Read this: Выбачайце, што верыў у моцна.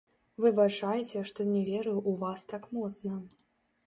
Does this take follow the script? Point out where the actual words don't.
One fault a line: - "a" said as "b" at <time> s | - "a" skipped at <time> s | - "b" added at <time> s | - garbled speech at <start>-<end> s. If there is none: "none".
- "не" added at 1.5 s
- "вас так" added at 2.2 s